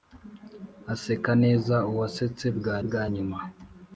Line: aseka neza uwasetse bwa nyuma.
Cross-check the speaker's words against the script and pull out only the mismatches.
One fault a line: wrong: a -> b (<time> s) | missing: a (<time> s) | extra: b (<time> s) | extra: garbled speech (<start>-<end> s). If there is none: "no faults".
extra: bwa (2.8 s)